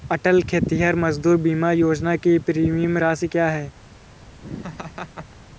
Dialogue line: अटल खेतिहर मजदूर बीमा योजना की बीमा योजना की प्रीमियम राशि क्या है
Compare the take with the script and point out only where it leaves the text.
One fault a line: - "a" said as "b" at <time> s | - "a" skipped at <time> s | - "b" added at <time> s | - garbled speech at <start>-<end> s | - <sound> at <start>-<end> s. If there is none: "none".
- "बीमा योजना की" skipped at 2.4 s
- laugh at 4.4-5.4 s